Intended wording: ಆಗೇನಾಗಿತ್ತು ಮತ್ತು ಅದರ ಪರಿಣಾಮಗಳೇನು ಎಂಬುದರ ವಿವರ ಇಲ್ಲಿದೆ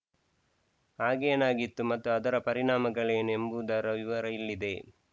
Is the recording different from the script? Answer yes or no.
no